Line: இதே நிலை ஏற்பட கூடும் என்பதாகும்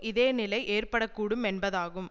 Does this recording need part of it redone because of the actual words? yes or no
no